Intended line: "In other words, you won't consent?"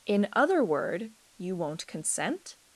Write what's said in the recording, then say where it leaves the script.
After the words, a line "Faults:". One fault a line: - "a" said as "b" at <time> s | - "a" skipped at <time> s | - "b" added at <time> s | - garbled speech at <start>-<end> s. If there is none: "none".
"In other word, you won't consent?"
Faults:
- "words" said as "word" at 0.6 s